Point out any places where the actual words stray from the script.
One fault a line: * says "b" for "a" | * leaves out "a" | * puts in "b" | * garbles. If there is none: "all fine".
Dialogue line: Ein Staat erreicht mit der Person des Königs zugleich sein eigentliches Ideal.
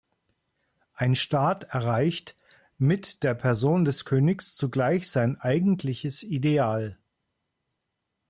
all fine